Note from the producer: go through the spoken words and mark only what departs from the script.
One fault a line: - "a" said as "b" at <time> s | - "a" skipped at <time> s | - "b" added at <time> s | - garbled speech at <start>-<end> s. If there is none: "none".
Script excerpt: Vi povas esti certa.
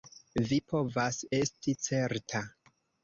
none